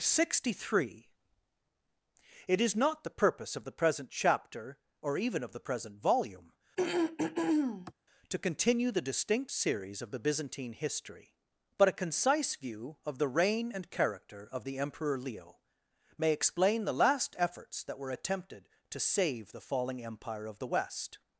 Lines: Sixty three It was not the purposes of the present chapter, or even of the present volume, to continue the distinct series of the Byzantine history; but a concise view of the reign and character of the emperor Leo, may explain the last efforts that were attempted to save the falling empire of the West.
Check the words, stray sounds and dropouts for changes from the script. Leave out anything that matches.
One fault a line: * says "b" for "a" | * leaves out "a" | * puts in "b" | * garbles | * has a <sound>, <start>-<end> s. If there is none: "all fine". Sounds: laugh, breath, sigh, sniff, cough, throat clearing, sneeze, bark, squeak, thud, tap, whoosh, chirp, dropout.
* says "is" for "was"
* says "purpose" for "purposes"
* has a throat clearing, 6.8-7.9 s